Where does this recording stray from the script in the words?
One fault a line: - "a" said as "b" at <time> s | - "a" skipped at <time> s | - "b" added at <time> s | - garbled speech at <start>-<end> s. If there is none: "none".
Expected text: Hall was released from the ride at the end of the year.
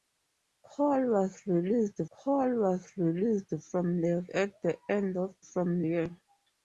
- "hall was released" added at 2.1 s
- "ride" skipped at 4.2 s
- "the" said as "from" at 5.4 s